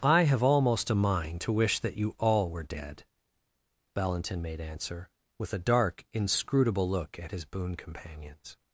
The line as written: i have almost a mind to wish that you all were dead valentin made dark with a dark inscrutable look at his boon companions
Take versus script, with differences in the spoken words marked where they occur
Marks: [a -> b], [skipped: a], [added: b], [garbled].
i have almost a mind to wish that you all were dead valentin made [dark -> answer] with a dark inscrutable look at his boon companions